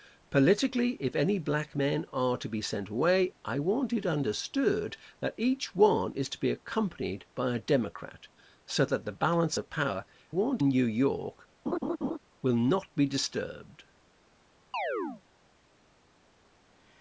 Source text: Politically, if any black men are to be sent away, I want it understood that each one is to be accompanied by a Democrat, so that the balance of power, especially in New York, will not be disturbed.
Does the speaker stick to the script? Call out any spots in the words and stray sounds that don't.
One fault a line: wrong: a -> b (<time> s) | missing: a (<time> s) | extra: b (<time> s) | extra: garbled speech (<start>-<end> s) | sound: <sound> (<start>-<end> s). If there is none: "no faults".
wrong: especially -> want (10.3 s)
sound: laugh (11.7-12.2 s)
sound: chirp (14.7-15.2 s)